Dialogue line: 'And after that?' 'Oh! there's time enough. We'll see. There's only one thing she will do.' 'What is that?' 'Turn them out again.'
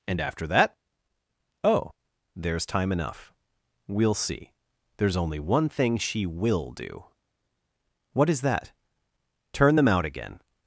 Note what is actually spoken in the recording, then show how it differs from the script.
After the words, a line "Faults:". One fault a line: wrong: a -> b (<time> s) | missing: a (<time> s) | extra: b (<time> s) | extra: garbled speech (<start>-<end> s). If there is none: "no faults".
'And after that?' 'Oh! there's time enough. We'll see. There's only one thing she will do.' 'What is that?' 'Turn them out again.'
Faults:
no faults